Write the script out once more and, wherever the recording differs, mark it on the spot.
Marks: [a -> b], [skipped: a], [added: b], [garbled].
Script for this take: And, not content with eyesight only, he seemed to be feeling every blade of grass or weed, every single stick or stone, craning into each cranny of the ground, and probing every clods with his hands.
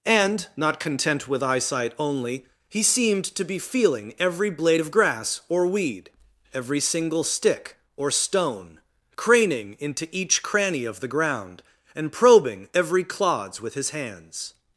And, not content with eyesight only, he seemed to be feeling every blade of grass or weed, every single stick or stone, craning into each cranny of the ground, and probing every clods with his hands.